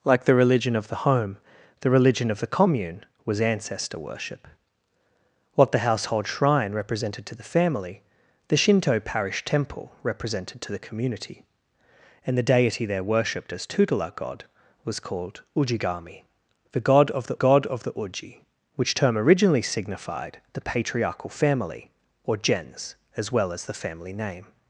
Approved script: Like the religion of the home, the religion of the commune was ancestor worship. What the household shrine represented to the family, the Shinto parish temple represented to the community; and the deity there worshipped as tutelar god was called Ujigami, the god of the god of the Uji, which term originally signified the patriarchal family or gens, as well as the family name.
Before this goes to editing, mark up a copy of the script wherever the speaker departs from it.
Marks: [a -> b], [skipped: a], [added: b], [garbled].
Like the religion of the home, the religion of the commune was ancestor worship. What the household shrine represented to the family, the Shinto parish temple represented to the community; and the deity there worshipped as tutelar god was called Ujigami, the god of the god of the Uji, which term originally signified the patriarchal family or gens, as well as the family name.